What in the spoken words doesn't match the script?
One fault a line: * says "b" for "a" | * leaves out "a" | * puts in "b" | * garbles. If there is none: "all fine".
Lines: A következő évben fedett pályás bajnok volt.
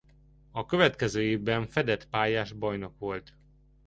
all fine